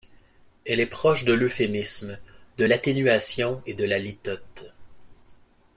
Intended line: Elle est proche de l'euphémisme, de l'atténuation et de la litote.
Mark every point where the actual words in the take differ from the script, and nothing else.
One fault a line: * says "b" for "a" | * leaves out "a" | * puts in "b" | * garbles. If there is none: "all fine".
all fine